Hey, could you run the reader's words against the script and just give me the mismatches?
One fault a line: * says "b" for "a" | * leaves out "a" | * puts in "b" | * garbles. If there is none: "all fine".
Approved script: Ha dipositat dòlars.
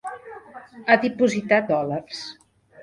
all fine